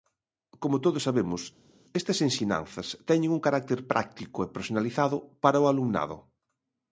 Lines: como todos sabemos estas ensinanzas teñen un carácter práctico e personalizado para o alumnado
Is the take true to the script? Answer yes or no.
yes